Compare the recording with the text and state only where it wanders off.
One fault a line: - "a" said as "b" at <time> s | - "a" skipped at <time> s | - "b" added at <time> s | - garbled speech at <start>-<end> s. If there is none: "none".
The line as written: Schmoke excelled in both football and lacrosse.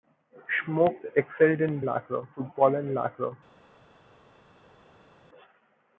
- "both" said as "lacrosse" at 1.8 s